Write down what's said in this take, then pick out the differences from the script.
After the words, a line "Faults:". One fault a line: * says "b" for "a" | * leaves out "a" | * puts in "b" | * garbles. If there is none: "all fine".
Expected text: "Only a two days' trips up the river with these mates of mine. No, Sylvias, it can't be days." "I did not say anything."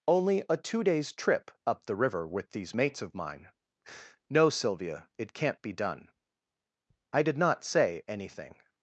"Only a two days' trip up the river with these mates of mine. No, Sylvia, it can't be done." "I did not say anything."
Faults:
* says "trip" for "trips"
* says "Sylvia" for "Sylvias"
* says "done" for "days"